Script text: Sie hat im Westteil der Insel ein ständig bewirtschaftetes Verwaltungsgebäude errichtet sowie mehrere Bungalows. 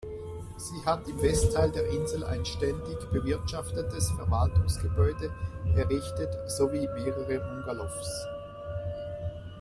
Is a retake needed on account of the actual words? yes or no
no